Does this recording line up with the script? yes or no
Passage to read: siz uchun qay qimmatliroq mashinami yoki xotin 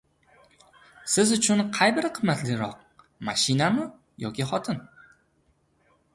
no